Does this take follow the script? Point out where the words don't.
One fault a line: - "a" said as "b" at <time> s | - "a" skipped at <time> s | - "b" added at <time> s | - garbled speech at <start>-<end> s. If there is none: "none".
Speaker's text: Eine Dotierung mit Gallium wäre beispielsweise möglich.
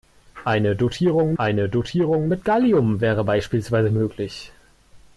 - "eine Dotierung" added at 1.4 s